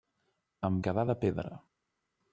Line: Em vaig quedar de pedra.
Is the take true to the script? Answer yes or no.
no